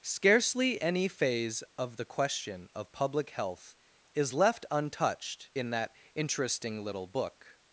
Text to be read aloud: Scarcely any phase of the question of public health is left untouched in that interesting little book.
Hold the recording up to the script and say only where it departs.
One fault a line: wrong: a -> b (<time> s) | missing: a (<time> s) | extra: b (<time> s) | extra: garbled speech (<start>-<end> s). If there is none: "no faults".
no faults